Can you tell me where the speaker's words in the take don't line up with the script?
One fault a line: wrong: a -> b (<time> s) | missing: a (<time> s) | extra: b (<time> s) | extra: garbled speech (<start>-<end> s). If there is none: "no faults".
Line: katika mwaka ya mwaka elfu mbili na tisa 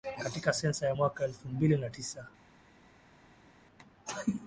wrong: mwaka -> sensa (0.5 s)